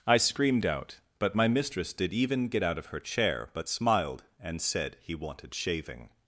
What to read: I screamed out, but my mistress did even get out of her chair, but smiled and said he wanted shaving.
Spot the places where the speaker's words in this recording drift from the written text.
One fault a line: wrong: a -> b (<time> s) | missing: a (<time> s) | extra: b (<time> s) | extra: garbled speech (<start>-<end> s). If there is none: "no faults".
no faults